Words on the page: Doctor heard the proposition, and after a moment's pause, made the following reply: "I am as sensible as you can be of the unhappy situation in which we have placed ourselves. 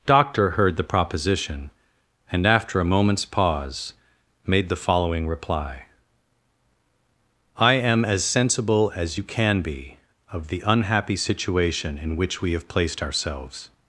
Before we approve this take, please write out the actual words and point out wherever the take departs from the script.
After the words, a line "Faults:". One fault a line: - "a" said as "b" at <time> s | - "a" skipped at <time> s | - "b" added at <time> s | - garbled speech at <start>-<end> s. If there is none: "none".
Doctor heard the proposition, and after a moment's pause, made the following reply: "I am as sensible as you can be of the unhappy situation in which we have placed ourselves.
Faults:
none